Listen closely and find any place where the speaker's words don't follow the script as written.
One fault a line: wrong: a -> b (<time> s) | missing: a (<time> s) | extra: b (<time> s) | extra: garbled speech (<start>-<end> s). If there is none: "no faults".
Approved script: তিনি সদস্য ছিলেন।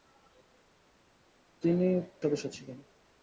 no faults